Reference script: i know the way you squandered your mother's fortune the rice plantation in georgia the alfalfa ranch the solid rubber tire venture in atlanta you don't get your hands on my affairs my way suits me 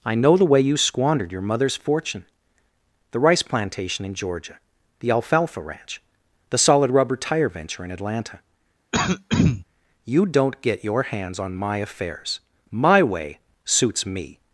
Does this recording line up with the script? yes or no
yes